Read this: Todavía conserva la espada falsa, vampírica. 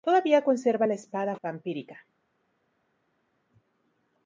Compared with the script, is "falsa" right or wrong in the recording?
wrong